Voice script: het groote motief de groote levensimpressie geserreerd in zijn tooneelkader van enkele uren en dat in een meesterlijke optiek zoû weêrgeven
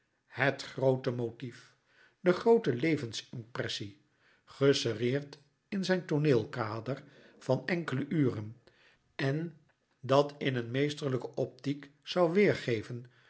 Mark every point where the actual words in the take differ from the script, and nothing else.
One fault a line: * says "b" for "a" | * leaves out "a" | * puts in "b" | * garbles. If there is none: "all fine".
all fine